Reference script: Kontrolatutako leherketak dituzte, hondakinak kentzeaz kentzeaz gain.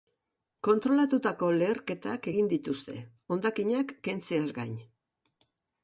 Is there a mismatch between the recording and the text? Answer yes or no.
yes